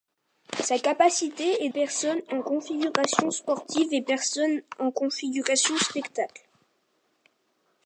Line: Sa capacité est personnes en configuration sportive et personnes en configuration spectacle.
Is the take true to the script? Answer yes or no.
yes